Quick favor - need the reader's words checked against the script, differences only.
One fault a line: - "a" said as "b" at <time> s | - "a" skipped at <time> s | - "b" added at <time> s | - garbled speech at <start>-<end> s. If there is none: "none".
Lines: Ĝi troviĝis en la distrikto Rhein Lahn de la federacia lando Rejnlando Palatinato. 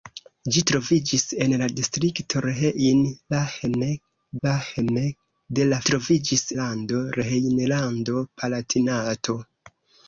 - "Lahn" added at 4.5 s
- "federacia" said as "troviĝis" at 5.9 s